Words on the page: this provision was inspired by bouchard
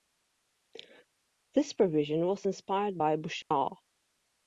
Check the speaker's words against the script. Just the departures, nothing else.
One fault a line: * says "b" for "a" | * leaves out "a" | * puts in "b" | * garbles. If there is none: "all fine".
all fine